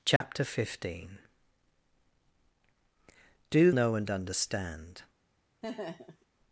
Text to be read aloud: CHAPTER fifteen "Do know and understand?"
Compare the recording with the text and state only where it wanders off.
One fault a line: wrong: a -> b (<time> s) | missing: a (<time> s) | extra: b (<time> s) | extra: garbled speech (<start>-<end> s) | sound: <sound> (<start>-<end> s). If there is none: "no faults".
sound: dropout (0.2-0.2 s)
sound: laugh (5.6-6.3 s)